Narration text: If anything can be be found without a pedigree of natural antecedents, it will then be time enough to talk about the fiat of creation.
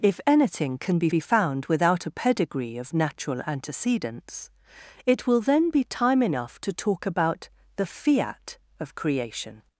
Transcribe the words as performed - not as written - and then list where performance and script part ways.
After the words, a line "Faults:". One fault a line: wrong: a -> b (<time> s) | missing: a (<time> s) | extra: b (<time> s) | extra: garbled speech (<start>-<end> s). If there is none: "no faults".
If anything can be be found without a pedigree of natural antecedents, it will then be time enough to talk about the fiat of creation.
Faults:
no faults